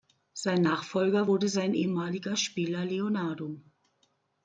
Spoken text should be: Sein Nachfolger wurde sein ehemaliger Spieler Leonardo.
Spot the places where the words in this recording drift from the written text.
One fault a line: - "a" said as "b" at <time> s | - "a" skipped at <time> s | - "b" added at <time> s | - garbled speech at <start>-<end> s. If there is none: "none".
none